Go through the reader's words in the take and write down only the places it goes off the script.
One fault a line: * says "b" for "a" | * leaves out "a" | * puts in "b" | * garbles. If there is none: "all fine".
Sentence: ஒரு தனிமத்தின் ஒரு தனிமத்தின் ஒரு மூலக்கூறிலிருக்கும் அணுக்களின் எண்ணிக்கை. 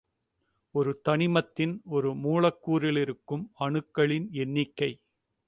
* leaves out "தனிமத்தின் ஒரு"